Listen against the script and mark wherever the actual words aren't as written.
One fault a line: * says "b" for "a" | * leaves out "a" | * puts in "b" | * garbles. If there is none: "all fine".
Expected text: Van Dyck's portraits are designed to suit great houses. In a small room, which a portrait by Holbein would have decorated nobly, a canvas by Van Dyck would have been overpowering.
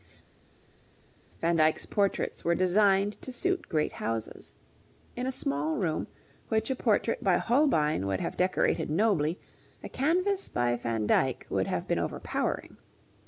* says "were" for "are"